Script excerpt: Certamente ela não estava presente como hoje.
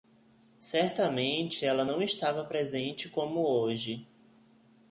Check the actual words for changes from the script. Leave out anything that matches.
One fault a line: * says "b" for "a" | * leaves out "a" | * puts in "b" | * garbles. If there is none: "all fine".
all fine